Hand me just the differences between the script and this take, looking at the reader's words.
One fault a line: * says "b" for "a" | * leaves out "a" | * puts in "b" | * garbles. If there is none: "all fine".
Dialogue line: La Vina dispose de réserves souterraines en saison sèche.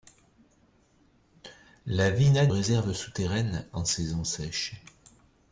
* leaves out "dispose de"